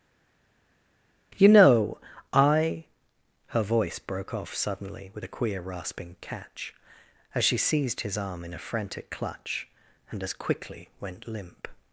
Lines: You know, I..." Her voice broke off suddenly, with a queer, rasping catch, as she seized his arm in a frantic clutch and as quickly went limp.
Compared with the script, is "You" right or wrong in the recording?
right